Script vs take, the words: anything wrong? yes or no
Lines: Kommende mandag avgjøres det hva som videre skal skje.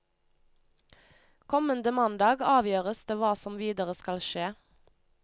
no